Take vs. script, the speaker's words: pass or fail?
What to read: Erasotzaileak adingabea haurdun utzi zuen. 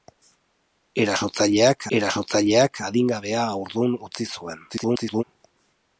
fail